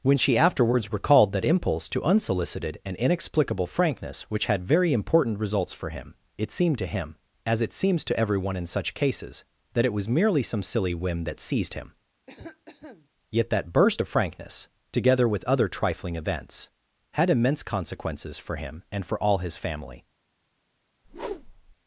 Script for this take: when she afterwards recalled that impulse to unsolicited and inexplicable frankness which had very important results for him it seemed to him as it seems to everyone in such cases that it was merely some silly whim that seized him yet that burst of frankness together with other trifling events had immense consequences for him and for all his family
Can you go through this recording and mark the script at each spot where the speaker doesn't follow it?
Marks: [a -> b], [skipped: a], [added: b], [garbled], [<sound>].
when she afterwards recalled that impulse to unsolicited and inexplicable frankness which had very important results for him it seemed to him as it seems to everyone in such cases that it was merely some silly whim that seized him [cough] yet that burst of frankness together with other trifling events had immense consequences for him and for all his family [whoosh]